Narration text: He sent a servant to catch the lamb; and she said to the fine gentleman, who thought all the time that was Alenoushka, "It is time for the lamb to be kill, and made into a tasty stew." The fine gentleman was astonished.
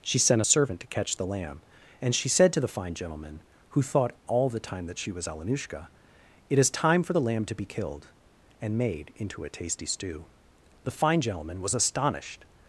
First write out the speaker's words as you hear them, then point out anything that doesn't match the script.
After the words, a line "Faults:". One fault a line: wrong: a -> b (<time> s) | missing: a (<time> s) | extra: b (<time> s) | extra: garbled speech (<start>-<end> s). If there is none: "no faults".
She sent a servant to catch the lamb; and she said to the fine gentleman, who thought all the time that she was Alenoushka, "It is time for the lamb to be killed, and made into a tasty stew." The fine gentleman was astonished.
Faults:
wrong: He -> She (0.0 s)
extra: she (5.0 s)
wrong: kill -> killed (7.6 s)